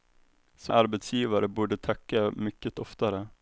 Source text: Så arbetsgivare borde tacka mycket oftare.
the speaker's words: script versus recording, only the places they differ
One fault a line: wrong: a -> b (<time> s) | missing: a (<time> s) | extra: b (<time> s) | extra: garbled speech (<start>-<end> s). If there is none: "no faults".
no faults